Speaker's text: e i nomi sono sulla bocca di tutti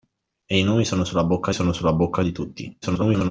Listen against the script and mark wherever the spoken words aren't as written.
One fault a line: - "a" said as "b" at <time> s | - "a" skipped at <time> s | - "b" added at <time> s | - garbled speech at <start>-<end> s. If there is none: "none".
- "sono sulla bocca" added at 1.5 s
- garbled speech at 2.8-3.3 s